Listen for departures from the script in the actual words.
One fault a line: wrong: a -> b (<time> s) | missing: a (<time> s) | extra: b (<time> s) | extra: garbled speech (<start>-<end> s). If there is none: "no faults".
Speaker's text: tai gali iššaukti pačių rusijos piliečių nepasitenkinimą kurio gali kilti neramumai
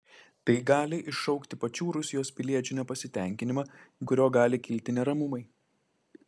no faults